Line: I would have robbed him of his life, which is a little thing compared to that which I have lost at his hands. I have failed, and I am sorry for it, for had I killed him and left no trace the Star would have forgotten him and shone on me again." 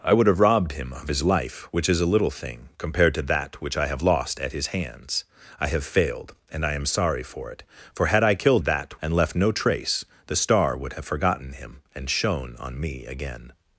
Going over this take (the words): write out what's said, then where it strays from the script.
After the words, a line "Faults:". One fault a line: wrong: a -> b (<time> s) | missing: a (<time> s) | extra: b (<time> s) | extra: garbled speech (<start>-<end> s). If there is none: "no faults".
I would have robbed him of his life, which is a little thing compared to that which I have lost at his hands. I have failed, and I am sorry for it, for had I killed that and left no trace the Star would have forgotten him and shone on me again."
Faults:
wrong: him -> that (8.6 s)